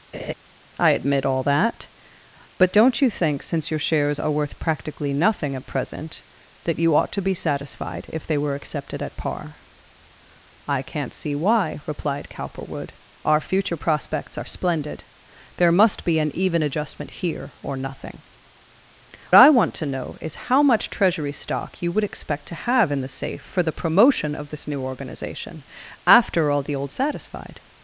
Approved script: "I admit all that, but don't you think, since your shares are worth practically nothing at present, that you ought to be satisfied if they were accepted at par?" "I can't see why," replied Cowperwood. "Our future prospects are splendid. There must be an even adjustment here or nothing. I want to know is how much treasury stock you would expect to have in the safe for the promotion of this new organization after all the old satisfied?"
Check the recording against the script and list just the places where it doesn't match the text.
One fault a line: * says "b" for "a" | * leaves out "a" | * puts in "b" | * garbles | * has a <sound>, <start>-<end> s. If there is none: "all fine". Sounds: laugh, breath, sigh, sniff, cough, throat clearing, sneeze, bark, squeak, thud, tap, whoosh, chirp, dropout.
* has a laugh, 0.1-0.3 s